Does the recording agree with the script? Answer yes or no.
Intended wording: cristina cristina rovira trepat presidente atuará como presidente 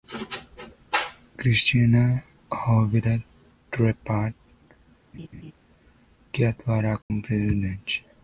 no